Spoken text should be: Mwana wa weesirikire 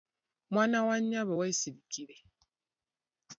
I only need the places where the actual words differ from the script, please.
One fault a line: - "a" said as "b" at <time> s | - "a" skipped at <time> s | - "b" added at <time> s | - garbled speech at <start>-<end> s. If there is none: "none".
- "nnyabo" added at 1.0 s